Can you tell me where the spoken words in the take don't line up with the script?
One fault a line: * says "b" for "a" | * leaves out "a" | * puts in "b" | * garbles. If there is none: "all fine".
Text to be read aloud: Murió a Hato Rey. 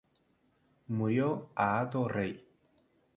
all fine